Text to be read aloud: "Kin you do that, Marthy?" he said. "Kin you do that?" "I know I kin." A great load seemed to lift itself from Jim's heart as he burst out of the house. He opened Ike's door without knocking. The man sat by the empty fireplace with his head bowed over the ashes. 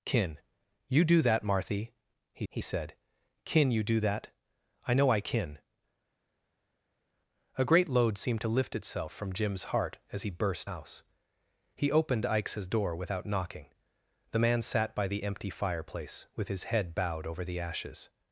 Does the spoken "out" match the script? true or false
false